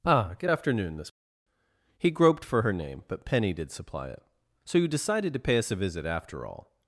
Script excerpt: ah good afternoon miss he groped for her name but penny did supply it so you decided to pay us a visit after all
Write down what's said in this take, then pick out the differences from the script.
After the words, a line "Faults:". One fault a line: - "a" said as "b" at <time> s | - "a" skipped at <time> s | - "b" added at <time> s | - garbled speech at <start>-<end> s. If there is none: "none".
ah good afternoon miss he groped for her name but penny did supply it so you decided to pay us a visit after all
Faults:
none